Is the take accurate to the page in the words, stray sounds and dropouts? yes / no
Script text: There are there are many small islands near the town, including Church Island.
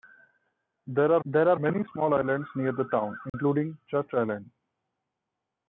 no